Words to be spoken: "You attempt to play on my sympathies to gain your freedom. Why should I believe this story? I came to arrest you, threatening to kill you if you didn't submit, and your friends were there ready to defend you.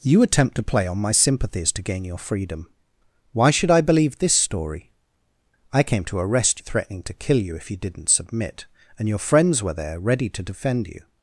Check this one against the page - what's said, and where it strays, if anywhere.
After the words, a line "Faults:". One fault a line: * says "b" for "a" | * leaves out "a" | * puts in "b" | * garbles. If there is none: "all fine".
"You attempt to play on my sympathies to gain your freedom. Why should I believe this story? I came to arrest threatening to kill you if you didn't submit, and your friends were there ready to defend you.
Faults:
* leaves out "you"